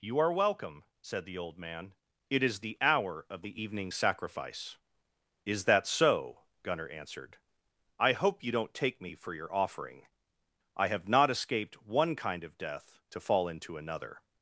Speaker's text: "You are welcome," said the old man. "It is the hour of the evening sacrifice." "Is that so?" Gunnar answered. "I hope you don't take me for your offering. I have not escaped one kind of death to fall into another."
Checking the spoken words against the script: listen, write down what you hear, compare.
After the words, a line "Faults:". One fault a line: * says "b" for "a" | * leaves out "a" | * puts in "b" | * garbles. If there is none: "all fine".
"You are welcome," said the old man. "It is the hour of the evening sacrifice." "Is that so?" Gunnar answered. "I hope you don't take me for your offering. I have not escaped one kind of death to fall into another."
Faults:
all fine